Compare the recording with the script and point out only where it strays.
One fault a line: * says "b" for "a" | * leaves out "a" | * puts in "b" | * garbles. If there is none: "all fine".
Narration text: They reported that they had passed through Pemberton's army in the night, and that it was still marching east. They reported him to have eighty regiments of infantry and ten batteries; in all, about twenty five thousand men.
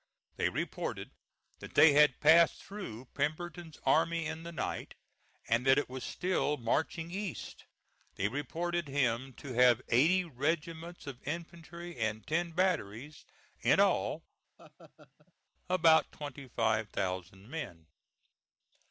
all fine